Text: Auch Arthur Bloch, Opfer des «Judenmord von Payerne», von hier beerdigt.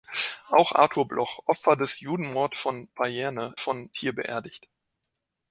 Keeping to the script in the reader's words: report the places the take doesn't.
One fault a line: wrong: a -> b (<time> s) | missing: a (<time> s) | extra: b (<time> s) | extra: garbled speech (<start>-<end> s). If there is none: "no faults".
no faults